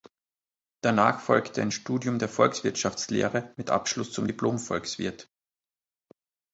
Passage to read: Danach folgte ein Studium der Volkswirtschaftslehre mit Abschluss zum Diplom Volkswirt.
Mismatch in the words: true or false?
false